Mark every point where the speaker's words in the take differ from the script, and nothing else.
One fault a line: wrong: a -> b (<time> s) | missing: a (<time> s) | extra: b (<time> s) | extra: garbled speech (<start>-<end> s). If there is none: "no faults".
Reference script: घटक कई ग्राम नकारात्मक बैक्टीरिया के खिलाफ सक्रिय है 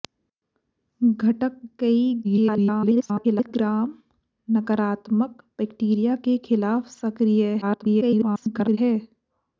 extra: garbled speech (2.2-3.5 s)
extra: garbled speech (7.6-8.8 s)